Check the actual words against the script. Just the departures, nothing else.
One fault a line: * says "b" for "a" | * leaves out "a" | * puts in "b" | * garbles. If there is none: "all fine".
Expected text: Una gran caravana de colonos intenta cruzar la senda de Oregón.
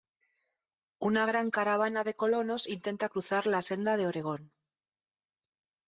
all fine